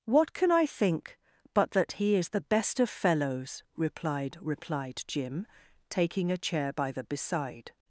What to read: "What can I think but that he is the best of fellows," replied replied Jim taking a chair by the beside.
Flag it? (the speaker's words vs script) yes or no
no